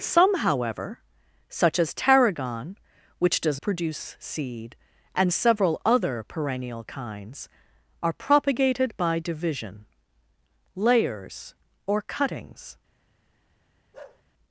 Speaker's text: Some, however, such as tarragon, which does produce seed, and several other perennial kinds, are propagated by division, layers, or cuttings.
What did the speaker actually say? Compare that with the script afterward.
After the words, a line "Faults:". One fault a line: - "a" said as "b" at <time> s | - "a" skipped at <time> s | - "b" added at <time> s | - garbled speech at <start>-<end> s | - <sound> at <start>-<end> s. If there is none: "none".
Some, however, such as tarragon, which does produce seed, and several other perennial kinds, are propagated by division, layers, or cuttings.
Faults:
- bark at 13.9-14.2 s